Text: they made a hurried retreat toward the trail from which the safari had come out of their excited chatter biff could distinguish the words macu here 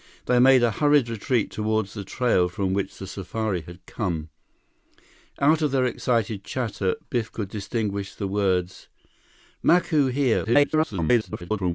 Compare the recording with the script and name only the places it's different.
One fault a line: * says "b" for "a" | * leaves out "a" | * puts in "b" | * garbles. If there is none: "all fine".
* garbles